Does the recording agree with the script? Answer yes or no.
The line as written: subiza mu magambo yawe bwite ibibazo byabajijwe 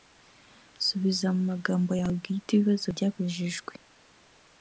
yes